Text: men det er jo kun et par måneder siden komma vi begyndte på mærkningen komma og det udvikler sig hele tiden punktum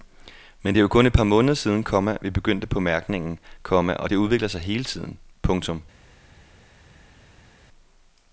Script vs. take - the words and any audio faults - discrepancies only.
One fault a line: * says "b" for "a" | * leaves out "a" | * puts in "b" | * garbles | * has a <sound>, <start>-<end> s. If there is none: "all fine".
all fine